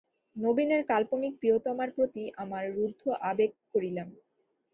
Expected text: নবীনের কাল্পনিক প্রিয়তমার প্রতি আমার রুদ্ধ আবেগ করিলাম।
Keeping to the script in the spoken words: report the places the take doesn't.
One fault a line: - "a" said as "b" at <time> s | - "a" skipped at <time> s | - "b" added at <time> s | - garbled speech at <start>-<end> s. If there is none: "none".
none